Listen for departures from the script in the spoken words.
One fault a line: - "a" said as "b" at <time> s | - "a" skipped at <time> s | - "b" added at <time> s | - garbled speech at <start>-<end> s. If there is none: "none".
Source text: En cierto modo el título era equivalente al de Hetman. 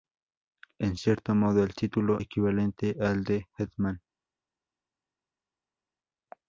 - "era" skipped at 2.2 s